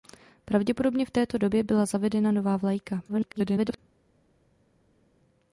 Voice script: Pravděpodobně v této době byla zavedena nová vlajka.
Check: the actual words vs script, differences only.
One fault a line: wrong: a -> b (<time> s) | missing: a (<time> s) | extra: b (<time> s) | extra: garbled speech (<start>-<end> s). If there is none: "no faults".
extra: garbled speech (3.1-3.8 s)